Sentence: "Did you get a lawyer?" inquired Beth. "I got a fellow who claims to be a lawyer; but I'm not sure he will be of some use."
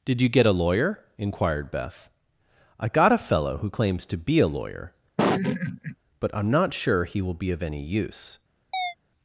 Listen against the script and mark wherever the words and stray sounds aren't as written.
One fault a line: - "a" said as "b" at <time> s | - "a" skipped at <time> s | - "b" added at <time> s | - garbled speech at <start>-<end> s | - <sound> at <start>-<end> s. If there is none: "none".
- laugh at 5.2-6.0 s
- "some" said as "any" at 7.6 s
- chirp at 8.7-8.9 s